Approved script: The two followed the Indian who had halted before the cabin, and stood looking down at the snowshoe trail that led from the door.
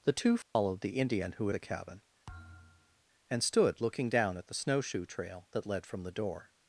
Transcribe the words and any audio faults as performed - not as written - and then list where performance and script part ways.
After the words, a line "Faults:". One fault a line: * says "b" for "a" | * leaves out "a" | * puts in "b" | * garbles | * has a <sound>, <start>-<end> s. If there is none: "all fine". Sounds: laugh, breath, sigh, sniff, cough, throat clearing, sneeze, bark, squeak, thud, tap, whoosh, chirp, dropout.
The two followed the Indian who the cabin, and stood looking down at the snowshoe trail that led from the door.
Faults:
* has a dropout, 0.4-0.6 s
* leaves out "had halted before"
* has a thud, 2.3-3.0 s